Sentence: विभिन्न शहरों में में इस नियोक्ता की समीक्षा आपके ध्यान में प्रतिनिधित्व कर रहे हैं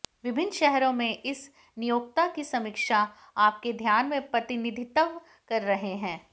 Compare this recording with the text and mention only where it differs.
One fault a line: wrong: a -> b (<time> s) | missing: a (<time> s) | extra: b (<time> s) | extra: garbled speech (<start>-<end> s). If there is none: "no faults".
missing: में (1.2 s)